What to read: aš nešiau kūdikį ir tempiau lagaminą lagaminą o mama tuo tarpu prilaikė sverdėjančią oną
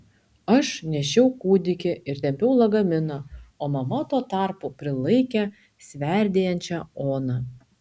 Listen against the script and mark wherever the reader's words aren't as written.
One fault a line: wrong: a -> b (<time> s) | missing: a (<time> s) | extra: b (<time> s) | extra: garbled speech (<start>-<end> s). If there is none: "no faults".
missing: lagaminą (3.2 s)